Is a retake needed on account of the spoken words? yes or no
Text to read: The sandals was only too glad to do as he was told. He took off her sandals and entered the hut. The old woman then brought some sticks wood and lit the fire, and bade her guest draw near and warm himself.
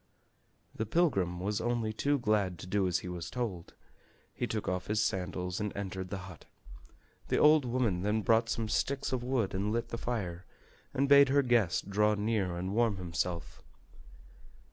yes